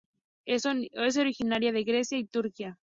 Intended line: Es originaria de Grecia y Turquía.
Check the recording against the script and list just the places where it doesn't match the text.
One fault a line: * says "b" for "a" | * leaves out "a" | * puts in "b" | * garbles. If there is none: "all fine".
all fine